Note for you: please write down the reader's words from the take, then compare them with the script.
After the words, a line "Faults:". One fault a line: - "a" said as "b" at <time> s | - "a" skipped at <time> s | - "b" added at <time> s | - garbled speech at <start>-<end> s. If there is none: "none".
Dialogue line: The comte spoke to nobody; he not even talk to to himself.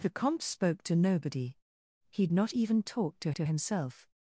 The comte spoke to nobody; he not even talk to to himself.
Faults:
none